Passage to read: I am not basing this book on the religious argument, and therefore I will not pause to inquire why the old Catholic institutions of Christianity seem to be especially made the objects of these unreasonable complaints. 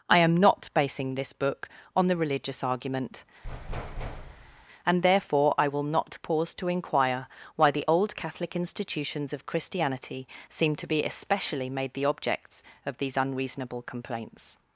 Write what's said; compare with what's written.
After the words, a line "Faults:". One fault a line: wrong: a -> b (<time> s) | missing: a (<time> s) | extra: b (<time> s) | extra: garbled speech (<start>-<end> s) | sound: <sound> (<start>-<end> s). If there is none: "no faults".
I am not basing this book on the religious argument, and therefore I will not pause to inquire why the old Catholic institutions of Christianity seem to be especially made the objects of these unreasonable complaints.
Faults:
sound: thud (3.4-4.7 s)